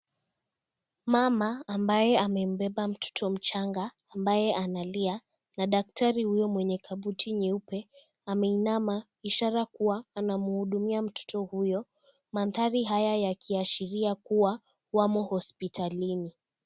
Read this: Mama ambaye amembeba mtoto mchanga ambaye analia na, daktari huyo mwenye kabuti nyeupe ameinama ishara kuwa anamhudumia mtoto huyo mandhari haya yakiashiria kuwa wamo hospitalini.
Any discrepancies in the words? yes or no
no